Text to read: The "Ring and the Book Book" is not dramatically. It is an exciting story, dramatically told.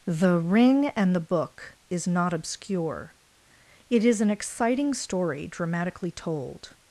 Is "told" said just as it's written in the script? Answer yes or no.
yes